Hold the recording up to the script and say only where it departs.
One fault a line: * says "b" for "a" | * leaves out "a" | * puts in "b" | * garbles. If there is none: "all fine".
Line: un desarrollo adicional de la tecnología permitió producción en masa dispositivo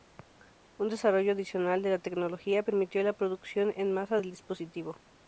* puts in "la"
* puts in "del"